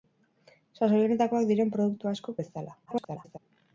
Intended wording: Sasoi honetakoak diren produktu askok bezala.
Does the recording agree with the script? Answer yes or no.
no